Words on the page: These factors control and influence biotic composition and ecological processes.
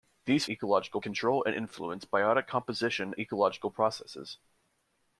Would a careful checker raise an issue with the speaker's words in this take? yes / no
yes